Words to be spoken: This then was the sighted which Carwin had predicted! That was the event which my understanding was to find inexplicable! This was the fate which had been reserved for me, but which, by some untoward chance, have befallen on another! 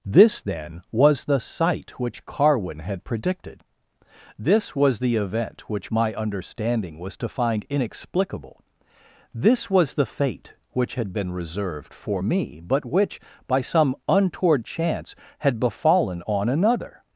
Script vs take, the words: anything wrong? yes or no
yes